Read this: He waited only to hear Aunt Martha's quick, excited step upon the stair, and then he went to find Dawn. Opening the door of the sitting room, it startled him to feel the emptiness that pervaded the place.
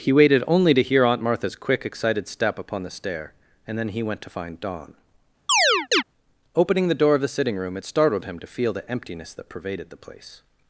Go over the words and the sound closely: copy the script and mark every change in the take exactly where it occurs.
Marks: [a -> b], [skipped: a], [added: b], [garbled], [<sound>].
He waited only to hear Aunt Martha's quick, excited step upon the stair, and then he went to find Dawn. [chirp] Opening the door of the sitting room, it startled him to feel the emptiness that pervaded the place.